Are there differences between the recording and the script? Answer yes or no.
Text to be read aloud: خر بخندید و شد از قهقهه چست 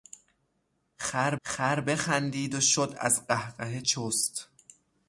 yes